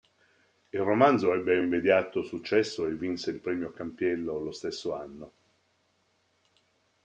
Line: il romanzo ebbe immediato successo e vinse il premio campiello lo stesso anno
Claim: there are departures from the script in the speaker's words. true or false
false